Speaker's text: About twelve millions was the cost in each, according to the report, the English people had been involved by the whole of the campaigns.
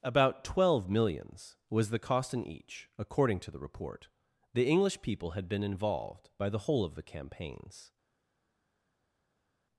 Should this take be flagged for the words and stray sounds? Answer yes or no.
no